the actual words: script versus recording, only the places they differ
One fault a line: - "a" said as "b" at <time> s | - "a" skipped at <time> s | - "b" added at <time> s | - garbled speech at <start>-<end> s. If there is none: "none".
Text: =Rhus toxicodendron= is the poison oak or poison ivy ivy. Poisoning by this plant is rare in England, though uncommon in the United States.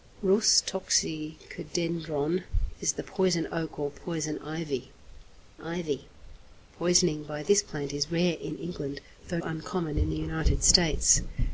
none